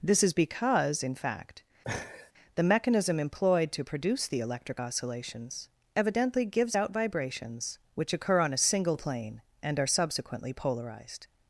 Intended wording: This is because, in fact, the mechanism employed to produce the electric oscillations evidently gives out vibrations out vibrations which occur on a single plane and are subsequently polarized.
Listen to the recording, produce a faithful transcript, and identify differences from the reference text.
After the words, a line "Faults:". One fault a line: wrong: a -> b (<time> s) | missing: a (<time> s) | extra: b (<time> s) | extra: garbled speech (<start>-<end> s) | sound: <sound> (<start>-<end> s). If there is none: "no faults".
This is because, in fact, the mechanism employed to produce the electric oscillations evidently gives out vibrations which occur on a single plane and are subsequently polarized.
Faults:
sound: laugh (1.8-2.3 s)
missing: out vibrations (7.8 s)